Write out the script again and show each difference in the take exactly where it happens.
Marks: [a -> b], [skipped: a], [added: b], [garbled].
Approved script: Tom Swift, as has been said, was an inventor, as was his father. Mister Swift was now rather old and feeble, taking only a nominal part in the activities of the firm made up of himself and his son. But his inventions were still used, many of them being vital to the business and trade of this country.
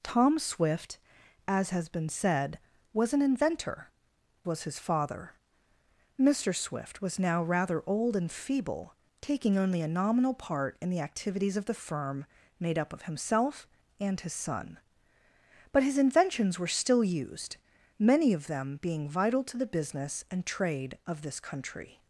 Tom Swift, as has been said, was an inventor, [skipped: as] was his father. Mister Swift was now rather old and feeble, taking only a nominal part in the activities of the firm made up of himself and his son. But his inventions were still used, many of them being vital to the business and trade of this country.